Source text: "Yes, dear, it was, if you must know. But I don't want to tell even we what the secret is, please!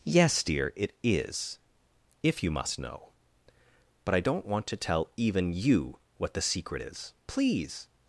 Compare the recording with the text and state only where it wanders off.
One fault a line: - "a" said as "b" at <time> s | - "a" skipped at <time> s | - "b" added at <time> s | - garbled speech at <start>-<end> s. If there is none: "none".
- "was" said as "is" at 1.0 s
- "we" said as "you" at 5.5 s